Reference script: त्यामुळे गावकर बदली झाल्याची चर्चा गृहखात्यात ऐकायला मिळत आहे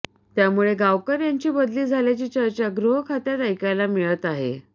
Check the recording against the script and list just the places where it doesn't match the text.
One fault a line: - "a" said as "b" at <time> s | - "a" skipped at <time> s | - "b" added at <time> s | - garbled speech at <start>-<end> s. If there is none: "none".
- "यांची" added at 1.2 s